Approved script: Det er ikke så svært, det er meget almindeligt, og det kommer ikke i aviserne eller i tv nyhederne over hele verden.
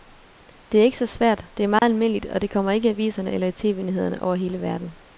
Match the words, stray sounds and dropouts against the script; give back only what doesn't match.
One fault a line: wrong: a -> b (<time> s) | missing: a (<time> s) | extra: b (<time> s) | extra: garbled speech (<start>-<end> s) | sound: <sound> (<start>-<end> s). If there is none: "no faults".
sound: dropout (1.8-1.8 s)